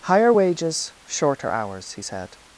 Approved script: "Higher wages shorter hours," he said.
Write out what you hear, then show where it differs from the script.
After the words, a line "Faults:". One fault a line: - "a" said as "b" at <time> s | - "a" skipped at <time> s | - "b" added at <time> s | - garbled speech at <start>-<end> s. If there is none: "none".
"Higher wages shorter hours," he said.
Faults:
none